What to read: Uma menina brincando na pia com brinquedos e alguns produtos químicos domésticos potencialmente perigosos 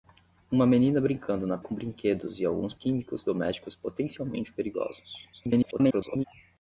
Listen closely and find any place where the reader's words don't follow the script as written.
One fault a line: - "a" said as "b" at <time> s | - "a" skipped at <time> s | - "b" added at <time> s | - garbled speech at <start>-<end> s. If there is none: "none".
- "pia" skipped at 1.6 s
- "produtos" skipped at 2.7 s
- garbled speech at 5.3-6.2 s